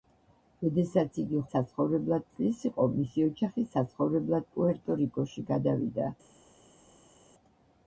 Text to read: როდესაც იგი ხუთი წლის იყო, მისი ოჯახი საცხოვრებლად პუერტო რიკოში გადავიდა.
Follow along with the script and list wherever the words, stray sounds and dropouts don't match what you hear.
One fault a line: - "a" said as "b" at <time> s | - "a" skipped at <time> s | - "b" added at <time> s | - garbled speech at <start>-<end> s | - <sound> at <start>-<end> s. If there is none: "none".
- "ხუთი" said as "საცხოვრებლად" at 1.6 s